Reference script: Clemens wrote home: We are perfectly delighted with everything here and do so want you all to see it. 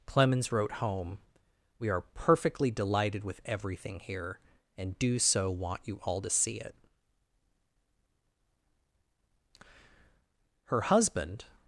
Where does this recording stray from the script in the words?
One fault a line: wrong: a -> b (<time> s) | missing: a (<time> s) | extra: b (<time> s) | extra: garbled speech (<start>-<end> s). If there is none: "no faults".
extra: Her husband (10.6 s)